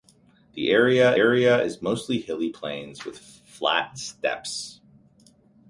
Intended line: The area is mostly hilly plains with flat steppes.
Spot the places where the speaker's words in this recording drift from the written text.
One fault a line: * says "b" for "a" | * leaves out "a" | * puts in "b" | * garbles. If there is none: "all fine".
* puts in "area"